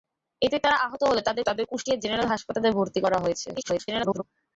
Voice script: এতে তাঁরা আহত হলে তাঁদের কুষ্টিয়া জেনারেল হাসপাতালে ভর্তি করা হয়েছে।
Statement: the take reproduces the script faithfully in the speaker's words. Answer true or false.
false